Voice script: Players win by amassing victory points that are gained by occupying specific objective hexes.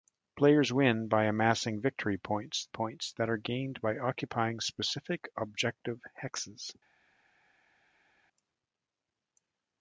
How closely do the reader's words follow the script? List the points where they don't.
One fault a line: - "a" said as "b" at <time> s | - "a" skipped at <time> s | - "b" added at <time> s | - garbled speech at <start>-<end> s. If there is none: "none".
- "points" added at 2.7 s